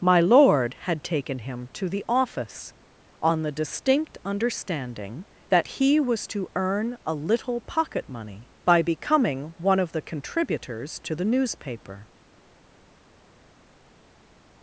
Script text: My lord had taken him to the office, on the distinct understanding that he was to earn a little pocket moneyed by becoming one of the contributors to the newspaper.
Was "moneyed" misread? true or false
true